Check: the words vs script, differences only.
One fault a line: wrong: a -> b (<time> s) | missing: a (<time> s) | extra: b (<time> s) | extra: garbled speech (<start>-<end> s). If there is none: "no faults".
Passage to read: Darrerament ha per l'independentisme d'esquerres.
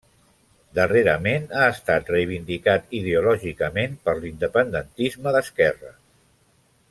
extra: estat reivindicat ideològicament (1.7 s)